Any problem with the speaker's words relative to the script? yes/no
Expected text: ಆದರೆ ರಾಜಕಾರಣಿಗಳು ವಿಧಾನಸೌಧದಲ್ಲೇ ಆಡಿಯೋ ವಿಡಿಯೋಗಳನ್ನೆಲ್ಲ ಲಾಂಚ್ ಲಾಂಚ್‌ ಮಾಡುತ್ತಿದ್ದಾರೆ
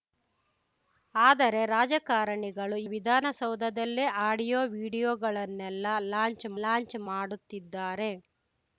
no